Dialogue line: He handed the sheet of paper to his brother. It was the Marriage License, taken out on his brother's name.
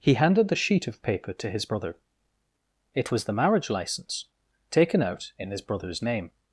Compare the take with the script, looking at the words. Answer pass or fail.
fail